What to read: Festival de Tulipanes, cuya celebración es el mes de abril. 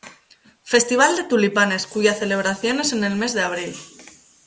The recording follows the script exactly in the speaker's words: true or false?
false